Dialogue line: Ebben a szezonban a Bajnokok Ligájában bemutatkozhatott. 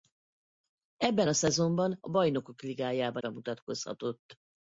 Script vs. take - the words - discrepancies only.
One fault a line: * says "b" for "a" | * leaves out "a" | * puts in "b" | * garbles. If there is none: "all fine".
all fine